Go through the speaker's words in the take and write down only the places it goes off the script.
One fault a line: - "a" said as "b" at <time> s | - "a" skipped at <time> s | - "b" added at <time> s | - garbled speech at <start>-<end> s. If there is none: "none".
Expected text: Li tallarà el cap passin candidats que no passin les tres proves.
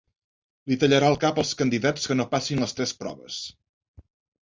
- "passin" said as "als" at 1.4 s